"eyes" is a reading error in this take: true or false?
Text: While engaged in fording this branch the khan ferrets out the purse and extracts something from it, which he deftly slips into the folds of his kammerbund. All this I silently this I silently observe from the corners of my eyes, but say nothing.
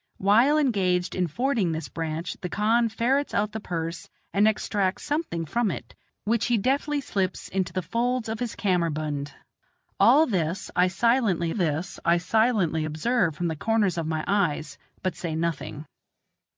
false